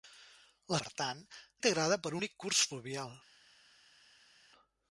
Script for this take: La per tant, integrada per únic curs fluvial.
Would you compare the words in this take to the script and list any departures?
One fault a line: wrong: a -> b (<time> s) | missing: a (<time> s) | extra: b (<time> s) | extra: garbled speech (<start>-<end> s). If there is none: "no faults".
no faults